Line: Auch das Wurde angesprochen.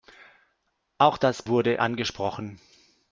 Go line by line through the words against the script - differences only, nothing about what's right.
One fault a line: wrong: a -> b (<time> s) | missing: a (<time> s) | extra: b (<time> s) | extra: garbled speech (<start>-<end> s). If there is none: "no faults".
no faults